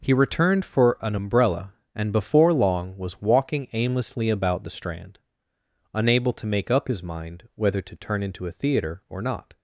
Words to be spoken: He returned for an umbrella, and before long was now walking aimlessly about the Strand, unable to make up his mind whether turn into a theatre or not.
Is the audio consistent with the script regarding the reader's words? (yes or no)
no